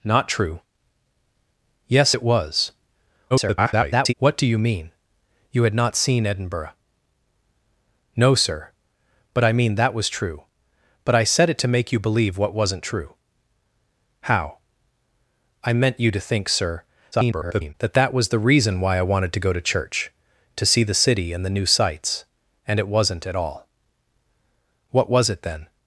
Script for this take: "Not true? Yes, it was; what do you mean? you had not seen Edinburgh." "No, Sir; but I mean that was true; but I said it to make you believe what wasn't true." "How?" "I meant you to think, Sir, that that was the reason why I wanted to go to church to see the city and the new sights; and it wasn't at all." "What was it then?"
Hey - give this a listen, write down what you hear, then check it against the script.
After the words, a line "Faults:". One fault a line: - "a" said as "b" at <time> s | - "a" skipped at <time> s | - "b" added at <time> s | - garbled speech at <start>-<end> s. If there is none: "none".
"Not true? Yes, it was; [garbled] what do you mean? you had not seen Edinburgh." "No, Sir; but I mean that was true; but I said it to make you believe what wasn't true." "How?" "I meant you to think, Sir, [garbled] that that was the reason why I wanted to go to church to see the city and the new sights; and it wasn't at all." "What was it then?"
Faults:
- garbled speech at 3.3-4.1 s
- garbled speech at 17.1-17.7 s